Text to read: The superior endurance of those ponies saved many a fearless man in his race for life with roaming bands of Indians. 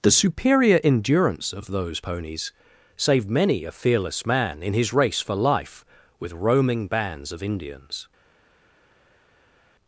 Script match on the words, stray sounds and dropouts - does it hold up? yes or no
yes